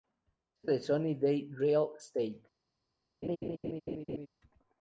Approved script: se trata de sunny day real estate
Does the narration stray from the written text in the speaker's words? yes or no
yes